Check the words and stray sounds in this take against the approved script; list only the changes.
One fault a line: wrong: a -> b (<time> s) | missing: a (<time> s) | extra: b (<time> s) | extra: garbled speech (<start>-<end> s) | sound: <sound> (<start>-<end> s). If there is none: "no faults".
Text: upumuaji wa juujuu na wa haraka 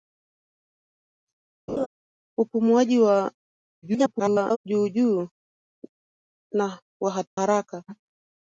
sound: laugh (1.7-1.9 s)
extra: garbled speech (3.8-4.6 s)
missing: wa (6.8 s)